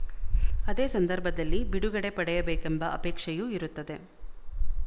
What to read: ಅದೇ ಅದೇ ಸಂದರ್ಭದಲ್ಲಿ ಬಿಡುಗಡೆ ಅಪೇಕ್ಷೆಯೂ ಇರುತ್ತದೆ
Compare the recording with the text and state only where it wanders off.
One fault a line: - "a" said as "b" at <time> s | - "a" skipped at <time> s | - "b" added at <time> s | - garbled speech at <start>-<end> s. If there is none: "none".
- "ಅದೇ" skipped at 0.8 s
- "ಪಡೆಯಬೇಕೆಂಬ" added at 2.1 s